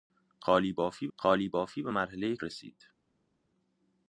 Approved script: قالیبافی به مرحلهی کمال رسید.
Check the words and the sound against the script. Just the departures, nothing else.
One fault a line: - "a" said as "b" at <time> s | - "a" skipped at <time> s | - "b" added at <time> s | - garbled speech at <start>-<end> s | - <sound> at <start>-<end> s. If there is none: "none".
- "قالیبافی" added at 1.2 s
- "کمال" skipped at 2.4 s